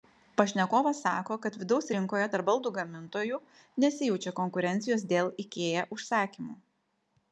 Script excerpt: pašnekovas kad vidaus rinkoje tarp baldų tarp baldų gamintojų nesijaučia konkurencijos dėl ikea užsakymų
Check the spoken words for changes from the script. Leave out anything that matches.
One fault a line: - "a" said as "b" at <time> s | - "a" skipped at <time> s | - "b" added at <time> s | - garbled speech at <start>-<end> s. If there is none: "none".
- "sako" added at 1.1 s
- "tarp baldų" skipped at 2.7 s